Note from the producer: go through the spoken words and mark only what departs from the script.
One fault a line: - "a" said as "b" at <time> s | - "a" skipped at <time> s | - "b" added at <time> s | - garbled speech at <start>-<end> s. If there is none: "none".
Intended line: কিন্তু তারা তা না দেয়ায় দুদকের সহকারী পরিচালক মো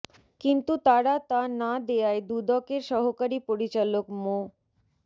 none